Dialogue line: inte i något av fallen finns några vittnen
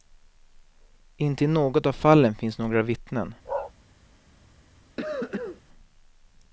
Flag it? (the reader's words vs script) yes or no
no